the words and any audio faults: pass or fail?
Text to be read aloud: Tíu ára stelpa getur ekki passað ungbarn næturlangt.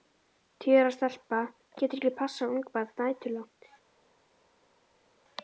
pass